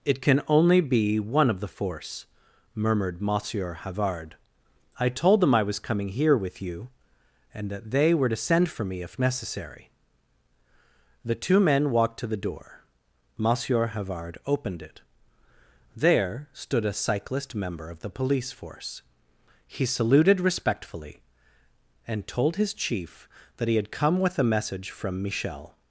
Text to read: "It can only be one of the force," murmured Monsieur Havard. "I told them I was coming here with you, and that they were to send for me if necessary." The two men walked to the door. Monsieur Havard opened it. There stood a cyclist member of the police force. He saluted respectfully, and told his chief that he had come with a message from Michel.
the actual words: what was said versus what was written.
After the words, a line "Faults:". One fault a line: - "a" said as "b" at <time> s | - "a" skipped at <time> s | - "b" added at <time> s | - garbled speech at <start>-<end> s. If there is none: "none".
"It can only be one of the force," murmured Monsieur Havard. "I told them I was coming here with you, and that they were to send for me if necessary." The two men walked to the door. Monsieur Havard opened it. There stood a cyclist member of the police force. He saluted respectfully, and told his chief that he had come with a message from Michel.
Faults:
none